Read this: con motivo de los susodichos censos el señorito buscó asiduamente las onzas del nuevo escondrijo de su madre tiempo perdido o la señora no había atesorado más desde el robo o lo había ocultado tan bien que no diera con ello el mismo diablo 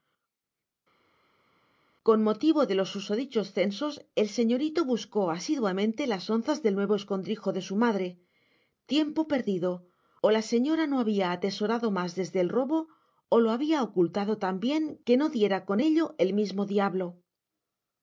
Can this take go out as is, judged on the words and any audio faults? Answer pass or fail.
pass